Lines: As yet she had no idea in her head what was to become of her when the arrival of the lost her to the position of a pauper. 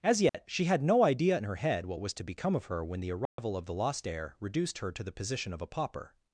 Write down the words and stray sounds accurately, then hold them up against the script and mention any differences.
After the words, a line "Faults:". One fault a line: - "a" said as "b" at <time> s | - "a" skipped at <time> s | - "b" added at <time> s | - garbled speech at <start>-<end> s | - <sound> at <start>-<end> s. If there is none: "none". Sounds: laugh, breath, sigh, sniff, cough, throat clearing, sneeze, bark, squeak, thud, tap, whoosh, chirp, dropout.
As yet she had no idea in her head what was to become of her when the arrival of the lost heir reduced her to the position of a pauper.
Faults:
- dropout at 0.3-0.3 s
- dropout at 3.3-3.4 s
- "heir reduced" added at 4.1 s